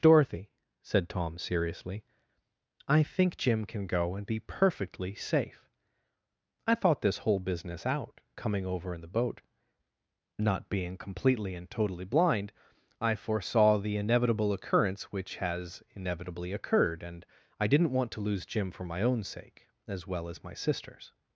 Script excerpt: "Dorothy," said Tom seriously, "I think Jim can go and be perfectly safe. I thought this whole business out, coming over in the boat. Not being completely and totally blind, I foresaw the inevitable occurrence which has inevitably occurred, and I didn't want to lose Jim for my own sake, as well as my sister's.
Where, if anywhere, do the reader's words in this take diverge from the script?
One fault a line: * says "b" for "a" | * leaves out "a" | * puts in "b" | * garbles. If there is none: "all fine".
all fine